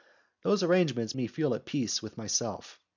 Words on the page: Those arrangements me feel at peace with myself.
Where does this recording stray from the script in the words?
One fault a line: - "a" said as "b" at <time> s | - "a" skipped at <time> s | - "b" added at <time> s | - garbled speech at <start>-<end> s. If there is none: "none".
none